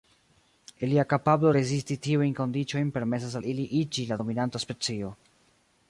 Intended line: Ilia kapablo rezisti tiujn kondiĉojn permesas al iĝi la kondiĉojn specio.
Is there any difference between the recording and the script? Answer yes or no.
yes